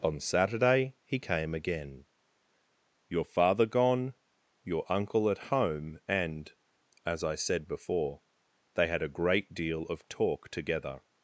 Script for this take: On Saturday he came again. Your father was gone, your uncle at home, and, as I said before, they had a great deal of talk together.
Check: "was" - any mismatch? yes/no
yes